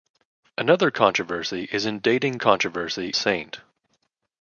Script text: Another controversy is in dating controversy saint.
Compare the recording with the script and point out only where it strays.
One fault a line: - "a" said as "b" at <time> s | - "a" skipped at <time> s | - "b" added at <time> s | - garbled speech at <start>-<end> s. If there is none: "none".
none